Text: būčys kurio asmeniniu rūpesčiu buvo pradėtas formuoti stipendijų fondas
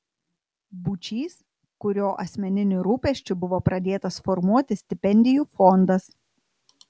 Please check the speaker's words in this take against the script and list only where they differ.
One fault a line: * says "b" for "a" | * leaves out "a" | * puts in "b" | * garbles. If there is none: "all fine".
all fine